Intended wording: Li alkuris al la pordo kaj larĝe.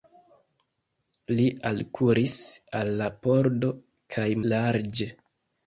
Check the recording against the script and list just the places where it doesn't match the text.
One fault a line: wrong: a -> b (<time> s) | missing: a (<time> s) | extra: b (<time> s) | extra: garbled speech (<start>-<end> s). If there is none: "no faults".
no faults